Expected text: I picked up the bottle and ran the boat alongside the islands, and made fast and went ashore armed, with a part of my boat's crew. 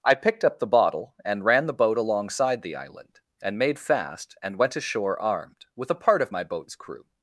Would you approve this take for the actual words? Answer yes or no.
no